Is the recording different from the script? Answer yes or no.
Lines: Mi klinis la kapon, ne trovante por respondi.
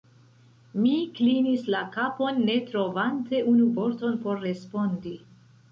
yes